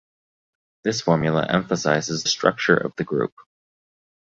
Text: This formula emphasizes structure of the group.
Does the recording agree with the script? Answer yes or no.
yes